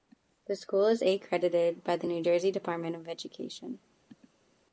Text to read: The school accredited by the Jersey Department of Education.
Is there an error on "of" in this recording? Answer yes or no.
no